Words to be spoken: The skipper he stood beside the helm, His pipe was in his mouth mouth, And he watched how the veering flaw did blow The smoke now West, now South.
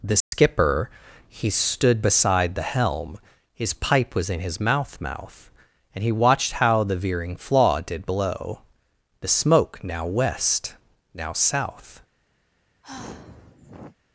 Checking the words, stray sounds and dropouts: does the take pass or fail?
fail